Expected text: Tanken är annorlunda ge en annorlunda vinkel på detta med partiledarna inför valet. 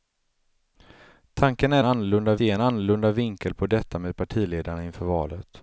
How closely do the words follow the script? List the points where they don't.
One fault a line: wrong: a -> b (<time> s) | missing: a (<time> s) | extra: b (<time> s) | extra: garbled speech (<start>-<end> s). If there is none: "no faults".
no faults